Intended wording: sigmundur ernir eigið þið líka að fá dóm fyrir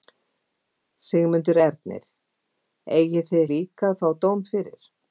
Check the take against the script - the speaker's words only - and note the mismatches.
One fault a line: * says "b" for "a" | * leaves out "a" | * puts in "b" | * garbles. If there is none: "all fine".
all fine